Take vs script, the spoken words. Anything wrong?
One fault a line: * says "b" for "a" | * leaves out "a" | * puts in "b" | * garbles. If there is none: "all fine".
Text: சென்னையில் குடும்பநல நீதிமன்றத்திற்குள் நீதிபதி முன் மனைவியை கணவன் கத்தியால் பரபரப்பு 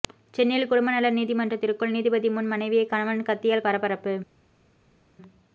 all fine